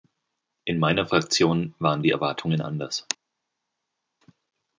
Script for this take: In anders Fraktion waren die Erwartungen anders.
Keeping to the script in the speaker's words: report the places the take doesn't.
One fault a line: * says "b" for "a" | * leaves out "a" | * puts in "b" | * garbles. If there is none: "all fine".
* says "meiner" for "anders"